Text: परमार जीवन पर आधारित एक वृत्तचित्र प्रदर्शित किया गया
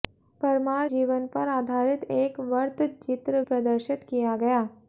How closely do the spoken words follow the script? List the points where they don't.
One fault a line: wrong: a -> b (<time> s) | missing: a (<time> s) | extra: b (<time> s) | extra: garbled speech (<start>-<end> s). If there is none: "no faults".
no faults